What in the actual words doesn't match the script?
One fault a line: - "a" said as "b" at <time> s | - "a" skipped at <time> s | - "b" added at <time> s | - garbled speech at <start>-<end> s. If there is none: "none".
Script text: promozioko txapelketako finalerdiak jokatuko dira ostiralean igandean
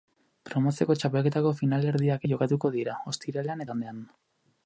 none